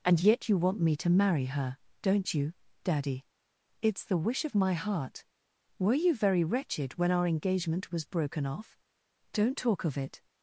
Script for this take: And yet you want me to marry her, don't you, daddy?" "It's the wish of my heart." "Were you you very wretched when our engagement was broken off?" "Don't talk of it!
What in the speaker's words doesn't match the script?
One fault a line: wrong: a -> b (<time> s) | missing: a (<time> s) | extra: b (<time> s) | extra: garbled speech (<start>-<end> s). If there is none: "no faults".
missing: you (6.2 s)